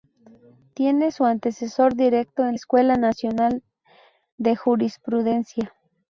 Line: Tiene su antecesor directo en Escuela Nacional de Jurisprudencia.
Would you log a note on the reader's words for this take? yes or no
no